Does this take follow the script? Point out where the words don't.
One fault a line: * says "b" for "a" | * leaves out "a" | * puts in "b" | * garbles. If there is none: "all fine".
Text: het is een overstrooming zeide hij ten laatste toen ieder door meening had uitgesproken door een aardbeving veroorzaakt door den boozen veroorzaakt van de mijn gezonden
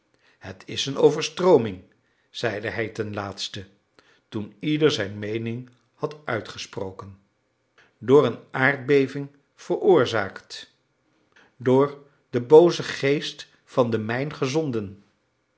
* says "zijn" for "door"
* says "geest" for "veroorzaakt"